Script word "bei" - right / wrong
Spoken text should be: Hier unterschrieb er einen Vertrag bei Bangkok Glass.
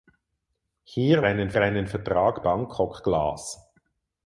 wrong